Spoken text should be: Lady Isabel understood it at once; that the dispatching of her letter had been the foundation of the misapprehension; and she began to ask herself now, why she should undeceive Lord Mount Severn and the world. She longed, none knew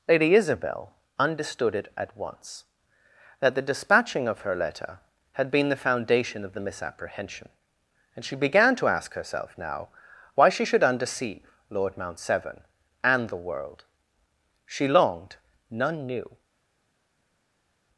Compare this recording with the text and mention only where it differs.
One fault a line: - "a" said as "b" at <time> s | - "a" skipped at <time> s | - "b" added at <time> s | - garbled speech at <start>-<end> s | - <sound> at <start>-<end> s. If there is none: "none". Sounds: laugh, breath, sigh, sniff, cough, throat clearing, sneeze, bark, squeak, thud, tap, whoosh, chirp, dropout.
none